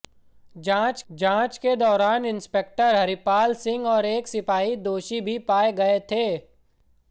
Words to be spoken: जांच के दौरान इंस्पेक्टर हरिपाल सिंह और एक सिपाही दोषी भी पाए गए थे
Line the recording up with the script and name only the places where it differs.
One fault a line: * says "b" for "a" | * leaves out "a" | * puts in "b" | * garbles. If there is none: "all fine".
* puts in "जांच"